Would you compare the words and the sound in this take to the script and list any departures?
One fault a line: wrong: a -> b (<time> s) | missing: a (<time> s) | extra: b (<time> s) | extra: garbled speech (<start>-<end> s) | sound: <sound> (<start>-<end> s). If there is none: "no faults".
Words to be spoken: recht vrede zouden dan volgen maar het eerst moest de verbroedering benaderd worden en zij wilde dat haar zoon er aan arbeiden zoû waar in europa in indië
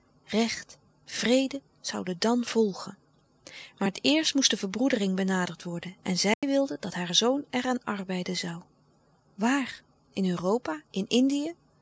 sound: dropout (6.3-6.4 s)